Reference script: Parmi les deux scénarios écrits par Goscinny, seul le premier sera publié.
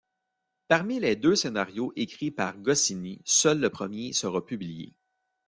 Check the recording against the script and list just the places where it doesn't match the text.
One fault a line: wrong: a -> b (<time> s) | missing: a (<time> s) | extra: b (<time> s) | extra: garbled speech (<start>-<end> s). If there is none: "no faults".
no faults